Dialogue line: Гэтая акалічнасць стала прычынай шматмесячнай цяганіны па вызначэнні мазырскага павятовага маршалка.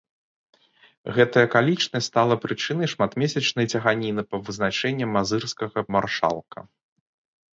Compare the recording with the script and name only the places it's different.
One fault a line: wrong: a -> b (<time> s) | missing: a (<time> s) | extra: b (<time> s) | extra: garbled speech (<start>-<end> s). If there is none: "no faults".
missing: павятовага (5.8 s)